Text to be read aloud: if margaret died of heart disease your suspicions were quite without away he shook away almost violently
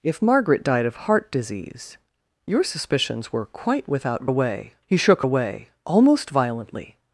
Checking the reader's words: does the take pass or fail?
pass